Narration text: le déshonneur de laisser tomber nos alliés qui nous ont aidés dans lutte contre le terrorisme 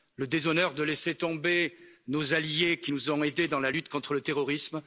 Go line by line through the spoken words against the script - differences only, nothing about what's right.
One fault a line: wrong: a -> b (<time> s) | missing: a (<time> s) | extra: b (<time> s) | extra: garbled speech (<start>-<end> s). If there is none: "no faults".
extra: la (3.6 s)